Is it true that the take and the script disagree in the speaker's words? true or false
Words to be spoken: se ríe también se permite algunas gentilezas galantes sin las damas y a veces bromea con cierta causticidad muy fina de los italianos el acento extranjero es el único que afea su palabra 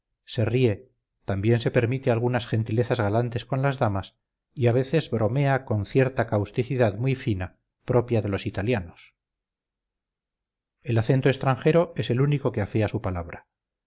true